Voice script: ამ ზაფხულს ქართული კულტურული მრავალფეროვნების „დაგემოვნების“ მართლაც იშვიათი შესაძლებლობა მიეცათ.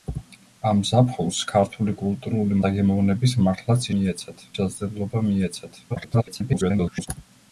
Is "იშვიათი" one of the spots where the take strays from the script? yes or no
yes